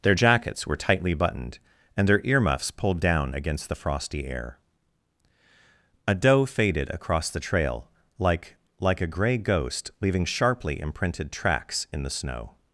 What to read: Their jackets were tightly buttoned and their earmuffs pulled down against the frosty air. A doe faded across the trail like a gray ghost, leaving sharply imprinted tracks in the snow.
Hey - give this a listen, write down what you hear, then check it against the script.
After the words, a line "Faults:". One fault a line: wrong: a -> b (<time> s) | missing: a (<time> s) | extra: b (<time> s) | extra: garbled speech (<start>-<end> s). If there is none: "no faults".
Their jackets were tightly buttoned and their earmuffs pulled down against the frosty air. A doe faded across the trail like like a gray ghost, leaving sharply imprinted tracks in the snow.
Faults:
extra: like (8.8 s)